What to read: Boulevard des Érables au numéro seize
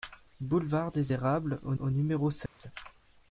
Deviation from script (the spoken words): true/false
true